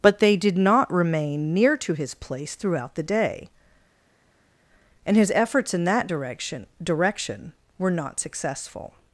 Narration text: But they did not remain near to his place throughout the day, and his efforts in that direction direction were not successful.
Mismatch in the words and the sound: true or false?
false